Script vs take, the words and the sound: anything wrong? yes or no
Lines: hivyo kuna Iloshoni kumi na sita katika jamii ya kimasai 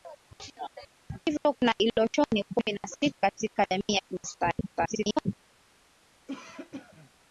yes